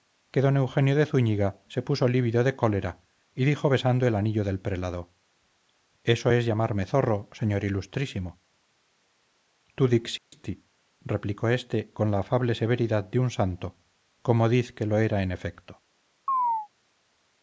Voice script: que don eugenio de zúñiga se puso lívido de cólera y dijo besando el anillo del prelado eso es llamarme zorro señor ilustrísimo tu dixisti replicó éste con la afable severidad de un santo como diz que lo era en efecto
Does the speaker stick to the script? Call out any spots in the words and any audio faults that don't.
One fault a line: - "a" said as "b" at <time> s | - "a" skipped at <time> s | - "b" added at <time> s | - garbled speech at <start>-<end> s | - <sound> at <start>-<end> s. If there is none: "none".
- dropout at 10.2-10.3 s
- chirp at 16.3-16.7 s